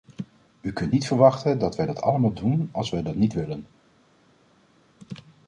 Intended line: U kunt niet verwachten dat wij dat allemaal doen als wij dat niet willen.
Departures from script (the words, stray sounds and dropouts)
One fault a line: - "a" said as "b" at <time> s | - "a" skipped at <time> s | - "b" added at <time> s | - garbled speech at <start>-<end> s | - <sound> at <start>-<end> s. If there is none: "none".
none